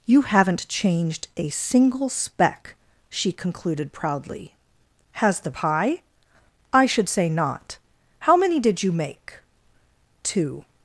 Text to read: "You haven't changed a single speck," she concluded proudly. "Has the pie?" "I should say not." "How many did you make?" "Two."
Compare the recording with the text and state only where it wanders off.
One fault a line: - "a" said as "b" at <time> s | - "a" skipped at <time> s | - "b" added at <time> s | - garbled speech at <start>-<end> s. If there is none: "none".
none